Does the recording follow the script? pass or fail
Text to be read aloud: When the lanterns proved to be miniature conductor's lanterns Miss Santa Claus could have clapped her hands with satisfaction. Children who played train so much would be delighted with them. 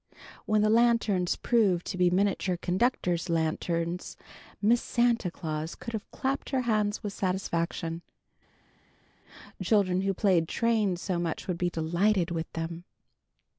pass